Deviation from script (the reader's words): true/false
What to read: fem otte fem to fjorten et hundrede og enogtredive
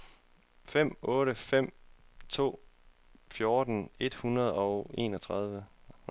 false